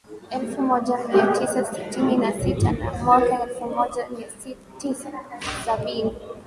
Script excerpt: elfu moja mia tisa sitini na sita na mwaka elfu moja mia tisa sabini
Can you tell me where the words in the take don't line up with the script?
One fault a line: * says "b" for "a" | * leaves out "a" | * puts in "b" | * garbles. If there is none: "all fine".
all fine